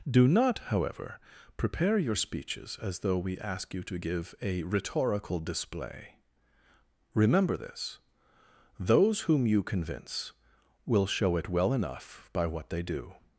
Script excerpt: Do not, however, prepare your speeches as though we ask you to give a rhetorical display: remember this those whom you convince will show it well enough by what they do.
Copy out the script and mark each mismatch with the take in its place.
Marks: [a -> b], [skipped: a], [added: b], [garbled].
Do not, however, prepare your speeches as though we ask you to give a rhetorical display: remember this those whom you convince will show it well enough by what they do.